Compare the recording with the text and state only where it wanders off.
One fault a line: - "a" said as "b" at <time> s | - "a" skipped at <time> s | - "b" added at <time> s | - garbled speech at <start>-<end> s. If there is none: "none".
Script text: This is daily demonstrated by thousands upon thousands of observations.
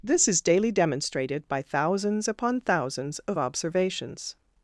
none